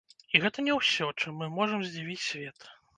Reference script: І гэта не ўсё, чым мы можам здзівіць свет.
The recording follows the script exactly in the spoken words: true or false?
true